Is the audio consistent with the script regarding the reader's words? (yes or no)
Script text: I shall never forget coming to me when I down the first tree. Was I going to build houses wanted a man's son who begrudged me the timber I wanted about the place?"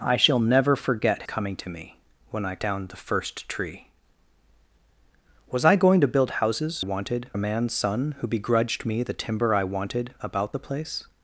yes